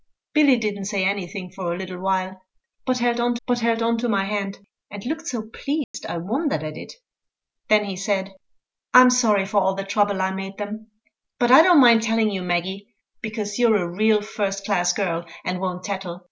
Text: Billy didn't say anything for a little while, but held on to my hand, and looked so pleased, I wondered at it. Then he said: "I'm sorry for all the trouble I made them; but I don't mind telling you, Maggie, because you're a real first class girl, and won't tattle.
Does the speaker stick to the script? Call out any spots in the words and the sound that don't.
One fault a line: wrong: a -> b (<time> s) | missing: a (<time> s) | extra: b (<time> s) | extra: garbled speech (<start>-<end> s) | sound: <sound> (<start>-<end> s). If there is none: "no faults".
extra: but held on (3.5 s)
sound: dropout (5.8-5.9 s)